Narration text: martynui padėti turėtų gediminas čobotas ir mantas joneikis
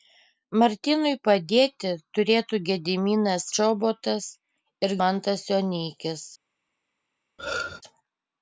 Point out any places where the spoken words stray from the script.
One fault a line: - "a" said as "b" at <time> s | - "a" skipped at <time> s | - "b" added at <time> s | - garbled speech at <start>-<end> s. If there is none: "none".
none